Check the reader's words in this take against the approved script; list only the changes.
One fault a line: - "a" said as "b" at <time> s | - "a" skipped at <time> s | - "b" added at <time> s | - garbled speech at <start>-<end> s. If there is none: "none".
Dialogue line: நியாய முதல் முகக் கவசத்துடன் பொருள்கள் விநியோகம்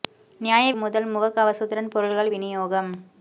none